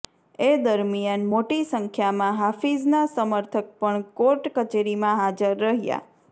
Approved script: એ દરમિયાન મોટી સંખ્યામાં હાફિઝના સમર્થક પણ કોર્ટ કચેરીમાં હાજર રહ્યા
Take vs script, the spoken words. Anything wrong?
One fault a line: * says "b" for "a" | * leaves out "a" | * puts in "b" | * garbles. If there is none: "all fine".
all fine